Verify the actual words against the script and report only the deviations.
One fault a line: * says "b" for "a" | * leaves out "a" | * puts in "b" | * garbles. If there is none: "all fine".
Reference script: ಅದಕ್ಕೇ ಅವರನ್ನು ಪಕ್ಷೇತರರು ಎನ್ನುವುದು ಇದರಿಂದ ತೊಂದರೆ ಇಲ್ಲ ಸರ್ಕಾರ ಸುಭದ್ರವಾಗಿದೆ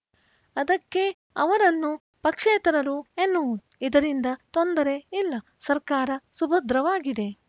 all fine